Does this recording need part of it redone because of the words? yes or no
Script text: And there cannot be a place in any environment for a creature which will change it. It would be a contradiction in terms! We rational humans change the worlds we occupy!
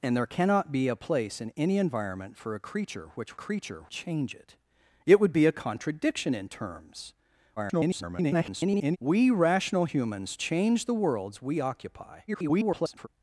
yes